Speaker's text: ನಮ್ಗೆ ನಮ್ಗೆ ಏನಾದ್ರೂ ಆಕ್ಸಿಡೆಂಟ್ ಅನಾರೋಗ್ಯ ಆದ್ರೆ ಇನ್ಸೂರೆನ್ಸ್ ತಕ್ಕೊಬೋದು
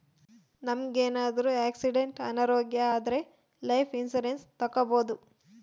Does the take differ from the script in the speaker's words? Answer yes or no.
yes